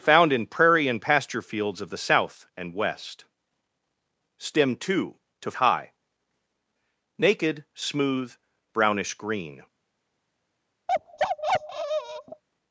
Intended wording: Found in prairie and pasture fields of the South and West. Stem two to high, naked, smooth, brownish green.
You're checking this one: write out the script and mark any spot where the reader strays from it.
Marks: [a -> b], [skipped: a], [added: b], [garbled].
Found in prairie and pasture fields of the South and West. Stem two to high, naked, smooth, brownish green.